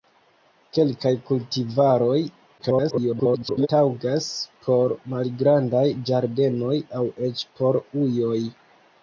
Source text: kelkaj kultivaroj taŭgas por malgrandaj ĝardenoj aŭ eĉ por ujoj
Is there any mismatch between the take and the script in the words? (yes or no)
yes